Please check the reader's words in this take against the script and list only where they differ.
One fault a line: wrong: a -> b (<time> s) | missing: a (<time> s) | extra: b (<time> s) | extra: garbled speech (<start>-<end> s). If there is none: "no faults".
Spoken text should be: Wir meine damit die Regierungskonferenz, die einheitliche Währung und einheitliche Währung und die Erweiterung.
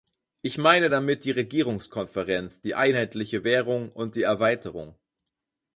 wrong: Wir -> Ich (0.4 s)
missing: einheitliche Währung und (4.2 s)